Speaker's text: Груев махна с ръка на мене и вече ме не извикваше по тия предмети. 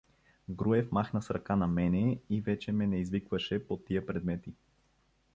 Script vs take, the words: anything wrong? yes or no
no